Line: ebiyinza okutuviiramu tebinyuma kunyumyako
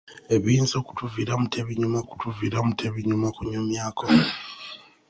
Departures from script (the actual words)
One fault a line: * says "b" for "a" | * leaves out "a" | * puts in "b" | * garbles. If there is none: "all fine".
* puts in "okutuviiramu tebinyuma"